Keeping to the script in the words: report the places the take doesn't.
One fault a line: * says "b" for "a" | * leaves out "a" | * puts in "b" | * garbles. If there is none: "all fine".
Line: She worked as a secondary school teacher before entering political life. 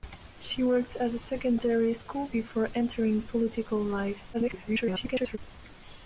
* leaves out "teacher"
* garbles